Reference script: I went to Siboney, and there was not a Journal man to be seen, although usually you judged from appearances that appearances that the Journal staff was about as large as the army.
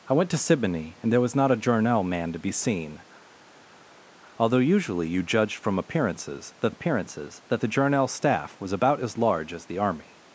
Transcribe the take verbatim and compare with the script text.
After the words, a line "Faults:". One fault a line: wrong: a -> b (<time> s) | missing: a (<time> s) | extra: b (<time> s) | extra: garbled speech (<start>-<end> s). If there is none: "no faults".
I went to Siboney, and there was not a Journal man to be seen, although usually you judged from appearances that appearances that the Journal staff was about as large as the army.
Faults:
no faults